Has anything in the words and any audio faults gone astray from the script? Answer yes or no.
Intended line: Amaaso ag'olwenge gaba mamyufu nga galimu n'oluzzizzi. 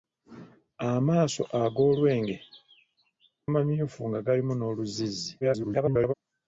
yes